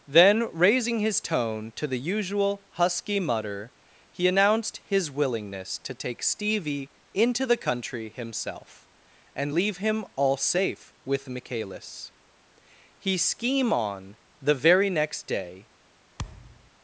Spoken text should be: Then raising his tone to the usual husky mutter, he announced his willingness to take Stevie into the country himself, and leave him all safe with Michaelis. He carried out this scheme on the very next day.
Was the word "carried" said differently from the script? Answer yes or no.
yes